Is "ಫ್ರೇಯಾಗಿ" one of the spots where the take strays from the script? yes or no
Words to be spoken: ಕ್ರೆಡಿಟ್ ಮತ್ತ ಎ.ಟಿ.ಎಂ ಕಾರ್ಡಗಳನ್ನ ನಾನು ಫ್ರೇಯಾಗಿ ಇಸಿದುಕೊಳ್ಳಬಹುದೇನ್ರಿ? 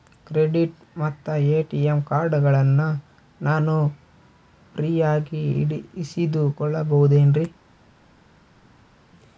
no